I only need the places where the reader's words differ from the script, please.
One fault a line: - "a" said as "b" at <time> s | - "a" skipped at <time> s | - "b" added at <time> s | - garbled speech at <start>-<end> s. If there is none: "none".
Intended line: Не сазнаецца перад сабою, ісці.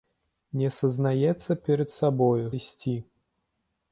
none